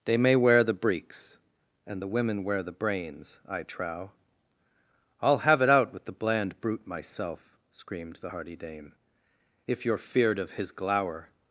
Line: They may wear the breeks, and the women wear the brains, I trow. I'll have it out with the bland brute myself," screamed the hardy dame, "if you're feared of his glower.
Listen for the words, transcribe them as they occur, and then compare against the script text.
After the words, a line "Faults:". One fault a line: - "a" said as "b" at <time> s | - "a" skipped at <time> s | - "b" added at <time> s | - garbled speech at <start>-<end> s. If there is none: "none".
They may wear the breeks, and the women wear the brains, I trow. I'll have it out with the bland brute myself," screamed the hardy dame, "if you're feared of his glower.
Faults:
none